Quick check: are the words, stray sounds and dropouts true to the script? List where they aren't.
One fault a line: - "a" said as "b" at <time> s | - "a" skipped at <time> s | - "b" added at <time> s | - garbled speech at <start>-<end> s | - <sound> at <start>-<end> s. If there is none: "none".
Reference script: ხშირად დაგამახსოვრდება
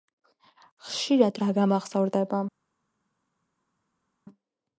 none